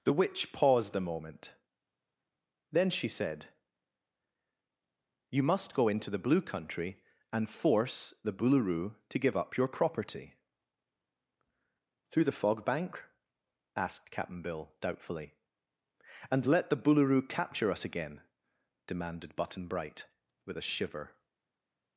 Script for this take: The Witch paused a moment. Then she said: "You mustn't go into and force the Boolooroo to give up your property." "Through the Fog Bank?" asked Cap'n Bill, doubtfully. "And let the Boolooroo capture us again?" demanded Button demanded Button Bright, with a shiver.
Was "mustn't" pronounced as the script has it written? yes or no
no